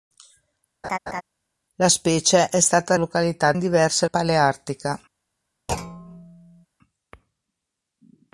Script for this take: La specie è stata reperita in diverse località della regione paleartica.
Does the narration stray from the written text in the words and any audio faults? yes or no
yes